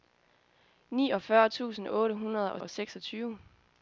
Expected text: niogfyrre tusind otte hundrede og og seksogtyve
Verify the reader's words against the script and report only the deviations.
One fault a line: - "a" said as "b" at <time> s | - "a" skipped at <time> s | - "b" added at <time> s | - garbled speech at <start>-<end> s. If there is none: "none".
none